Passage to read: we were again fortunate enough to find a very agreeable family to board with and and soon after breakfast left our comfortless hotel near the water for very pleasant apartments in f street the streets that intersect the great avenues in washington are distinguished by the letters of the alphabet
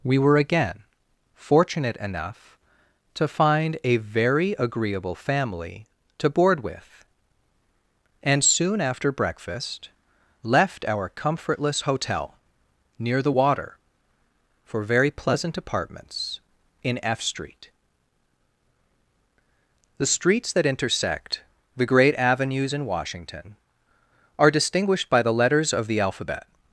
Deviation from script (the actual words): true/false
true